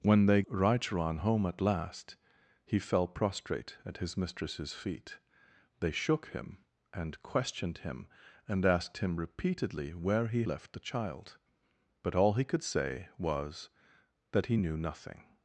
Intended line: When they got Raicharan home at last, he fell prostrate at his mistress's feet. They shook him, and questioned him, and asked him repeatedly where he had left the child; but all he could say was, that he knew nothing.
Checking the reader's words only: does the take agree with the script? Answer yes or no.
no